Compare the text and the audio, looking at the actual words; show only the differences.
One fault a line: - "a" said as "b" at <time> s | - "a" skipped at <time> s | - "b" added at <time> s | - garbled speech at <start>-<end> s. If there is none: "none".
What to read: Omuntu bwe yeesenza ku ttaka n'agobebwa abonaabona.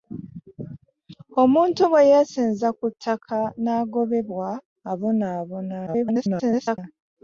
- garbled speech at 5.9-6.8 s